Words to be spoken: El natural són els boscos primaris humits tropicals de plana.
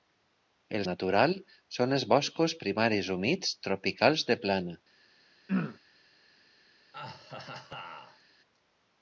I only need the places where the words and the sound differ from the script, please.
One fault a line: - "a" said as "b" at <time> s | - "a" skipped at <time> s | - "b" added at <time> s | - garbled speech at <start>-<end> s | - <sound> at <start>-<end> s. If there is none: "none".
- throat clearing at 5.5-5.8 s
- laugh at 6.9-8.2 s